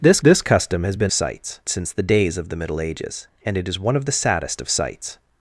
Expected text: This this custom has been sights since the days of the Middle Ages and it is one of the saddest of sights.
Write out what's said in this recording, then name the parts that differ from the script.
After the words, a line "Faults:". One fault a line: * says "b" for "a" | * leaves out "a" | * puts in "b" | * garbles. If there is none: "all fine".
This this custom has been sights since the days of the Middle Ages and it is one of the saddest of sights.
Faults:
all fine